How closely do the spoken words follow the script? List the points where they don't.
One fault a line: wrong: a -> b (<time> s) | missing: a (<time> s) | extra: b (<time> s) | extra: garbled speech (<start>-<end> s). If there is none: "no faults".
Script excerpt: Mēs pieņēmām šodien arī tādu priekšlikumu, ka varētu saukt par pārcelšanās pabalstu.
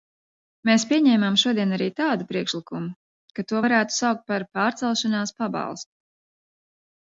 extra: to (3.5 s)